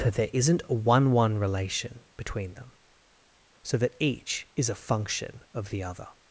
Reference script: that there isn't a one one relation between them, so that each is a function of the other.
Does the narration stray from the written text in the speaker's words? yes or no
no